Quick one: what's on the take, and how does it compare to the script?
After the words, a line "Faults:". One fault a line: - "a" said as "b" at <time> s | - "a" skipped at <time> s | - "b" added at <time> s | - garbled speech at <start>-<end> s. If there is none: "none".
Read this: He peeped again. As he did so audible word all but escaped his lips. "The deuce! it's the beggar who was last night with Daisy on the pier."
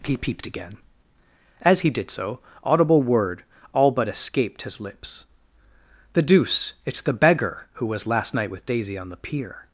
He peeped again. As he did so audible word all but escaped his lips. "The deuce! it's the beggar who was last night with Daisy on the pier."
Faults:
none